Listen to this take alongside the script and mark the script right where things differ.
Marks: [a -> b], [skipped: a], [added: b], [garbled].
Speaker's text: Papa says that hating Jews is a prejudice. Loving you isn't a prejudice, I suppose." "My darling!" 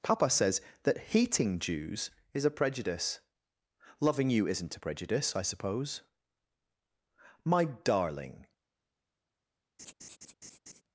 Papa says that hating Jews is a prejudice. Loving you isn't a prejudice, I suppose." "My darling!"